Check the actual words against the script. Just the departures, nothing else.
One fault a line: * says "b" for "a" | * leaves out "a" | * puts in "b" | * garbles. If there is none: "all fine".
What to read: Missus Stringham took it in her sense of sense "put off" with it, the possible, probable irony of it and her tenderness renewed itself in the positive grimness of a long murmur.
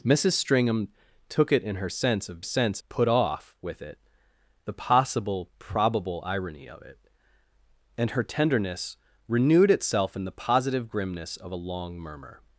all fine